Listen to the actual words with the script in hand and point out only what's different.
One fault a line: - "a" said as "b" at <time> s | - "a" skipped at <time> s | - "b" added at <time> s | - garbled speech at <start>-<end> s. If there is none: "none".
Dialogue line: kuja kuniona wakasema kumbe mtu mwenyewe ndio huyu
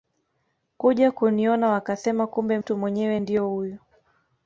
none